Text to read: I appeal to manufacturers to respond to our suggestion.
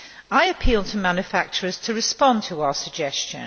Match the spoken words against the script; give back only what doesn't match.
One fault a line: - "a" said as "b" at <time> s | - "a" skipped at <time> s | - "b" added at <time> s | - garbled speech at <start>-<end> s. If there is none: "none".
none